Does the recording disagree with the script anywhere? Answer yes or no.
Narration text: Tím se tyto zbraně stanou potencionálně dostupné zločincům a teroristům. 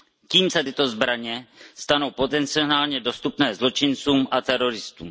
no